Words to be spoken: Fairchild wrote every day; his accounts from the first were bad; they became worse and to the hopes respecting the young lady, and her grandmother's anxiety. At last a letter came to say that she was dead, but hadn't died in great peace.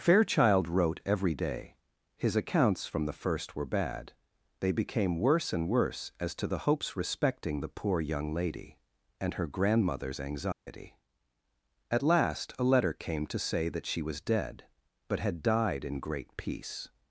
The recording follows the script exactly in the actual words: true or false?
false